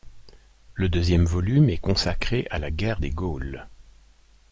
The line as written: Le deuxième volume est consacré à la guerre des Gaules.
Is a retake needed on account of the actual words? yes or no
no